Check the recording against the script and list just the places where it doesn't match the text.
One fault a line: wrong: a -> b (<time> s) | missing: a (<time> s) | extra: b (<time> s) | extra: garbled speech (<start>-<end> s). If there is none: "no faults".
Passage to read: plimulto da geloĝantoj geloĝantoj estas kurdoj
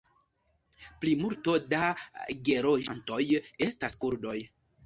missing: geloĝantoj (3.2 s)